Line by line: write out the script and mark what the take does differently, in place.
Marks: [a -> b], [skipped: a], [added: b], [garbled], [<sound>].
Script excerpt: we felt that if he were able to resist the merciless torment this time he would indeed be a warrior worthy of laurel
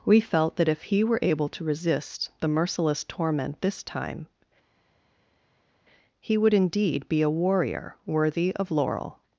we felt that if he were able to resist the merciless torment this time he would indeed be a warrior worthy of laurel